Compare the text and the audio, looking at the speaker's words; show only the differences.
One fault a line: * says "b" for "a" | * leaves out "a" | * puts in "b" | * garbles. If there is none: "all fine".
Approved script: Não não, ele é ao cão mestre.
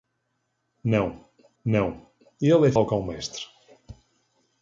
all fine